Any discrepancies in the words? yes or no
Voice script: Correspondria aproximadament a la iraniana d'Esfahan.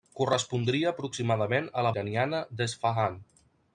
no